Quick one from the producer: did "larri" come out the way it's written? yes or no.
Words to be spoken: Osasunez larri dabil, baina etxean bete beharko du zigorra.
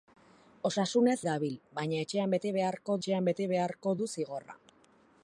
no